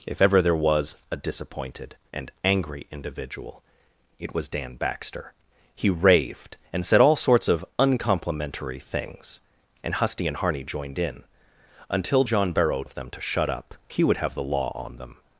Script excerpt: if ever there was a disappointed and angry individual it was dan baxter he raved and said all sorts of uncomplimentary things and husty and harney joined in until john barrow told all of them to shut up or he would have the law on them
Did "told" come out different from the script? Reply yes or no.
yes